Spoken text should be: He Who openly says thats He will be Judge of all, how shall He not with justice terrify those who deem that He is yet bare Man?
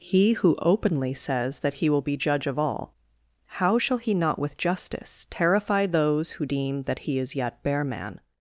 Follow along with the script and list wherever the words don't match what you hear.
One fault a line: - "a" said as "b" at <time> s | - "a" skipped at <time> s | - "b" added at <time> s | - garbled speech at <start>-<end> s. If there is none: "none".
- "thats" said as "that" at 1.6 s